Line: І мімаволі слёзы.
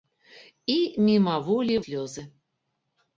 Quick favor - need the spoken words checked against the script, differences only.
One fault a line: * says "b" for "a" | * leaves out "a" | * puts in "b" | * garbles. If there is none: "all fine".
all fine